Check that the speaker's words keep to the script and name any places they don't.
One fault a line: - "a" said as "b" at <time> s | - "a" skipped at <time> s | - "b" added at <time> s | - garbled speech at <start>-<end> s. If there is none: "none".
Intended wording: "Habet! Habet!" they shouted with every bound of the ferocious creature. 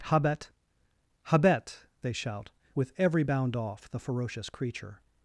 - "shouted" said as "shout" at 2.1 s
- "of" said as "off" at 3.6 s